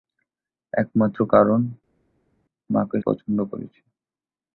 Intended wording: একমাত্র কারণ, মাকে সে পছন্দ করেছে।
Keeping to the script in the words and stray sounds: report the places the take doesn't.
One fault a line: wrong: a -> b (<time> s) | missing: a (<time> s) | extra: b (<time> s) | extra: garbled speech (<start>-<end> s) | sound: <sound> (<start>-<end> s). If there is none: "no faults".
missing: সে (3.0 s)